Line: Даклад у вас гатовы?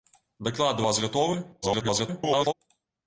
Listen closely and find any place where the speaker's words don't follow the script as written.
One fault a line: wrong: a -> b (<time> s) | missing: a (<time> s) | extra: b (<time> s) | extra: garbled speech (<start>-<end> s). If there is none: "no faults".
extra: garbled speech (1.6-2.5 s)